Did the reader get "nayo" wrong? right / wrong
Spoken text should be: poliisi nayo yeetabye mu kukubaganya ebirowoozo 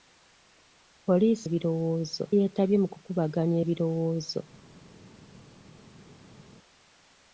wrong